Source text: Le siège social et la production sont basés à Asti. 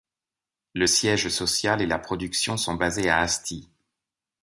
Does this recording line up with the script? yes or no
yes